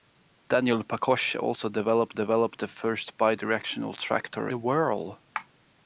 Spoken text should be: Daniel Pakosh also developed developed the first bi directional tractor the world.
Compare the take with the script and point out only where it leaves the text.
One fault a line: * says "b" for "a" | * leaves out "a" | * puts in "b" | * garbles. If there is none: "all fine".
all fine